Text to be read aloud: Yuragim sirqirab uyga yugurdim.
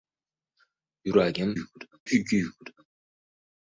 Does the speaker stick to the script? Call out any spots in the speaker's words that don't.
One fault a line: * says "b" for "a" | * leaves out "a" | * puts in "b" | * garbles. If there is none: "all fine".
* says "yugurdim" for "sirqirab"